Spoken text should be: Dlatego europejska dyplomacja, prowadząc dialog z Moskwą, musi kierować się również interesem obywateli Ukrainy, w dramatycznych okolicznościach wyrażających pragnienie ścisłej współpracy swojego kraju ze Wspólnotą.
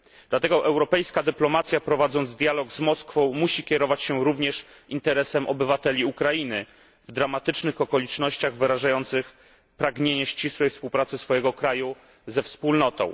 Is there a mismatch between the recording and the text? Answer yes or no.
no